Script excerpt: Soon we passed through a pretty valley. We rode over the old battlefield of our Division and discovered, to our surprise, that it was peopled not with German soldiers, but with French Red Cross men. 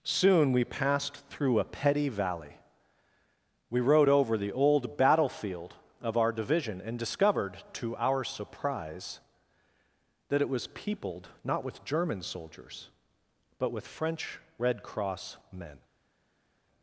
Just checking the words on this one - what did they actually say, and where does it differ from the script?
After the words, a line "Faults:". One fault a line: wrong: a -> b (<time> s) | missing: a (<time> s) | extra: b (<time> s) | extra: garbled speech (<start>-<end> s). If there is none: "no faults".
Soon we passed through a petty valley. We rode over the old battlefield of our Division and discovered, to our surprise, that it was peopled not with German soldiers, but with French Red Cross men.
Faults:
wrong: pretty -> petty (1.6 s)